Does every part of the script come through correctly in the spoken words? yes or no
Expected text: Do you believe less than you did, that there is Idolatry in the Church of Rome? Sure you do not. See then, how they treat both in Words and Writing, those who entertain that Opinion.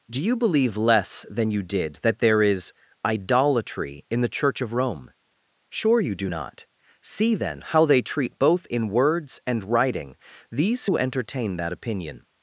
no